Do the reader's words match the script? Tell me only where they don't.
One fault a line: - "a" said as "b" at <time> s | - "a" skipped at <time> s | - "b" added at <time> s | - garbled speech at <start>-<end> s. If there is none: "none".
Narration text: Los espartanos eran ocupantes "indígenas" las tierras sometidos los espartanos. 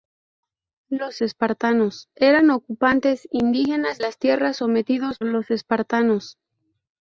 none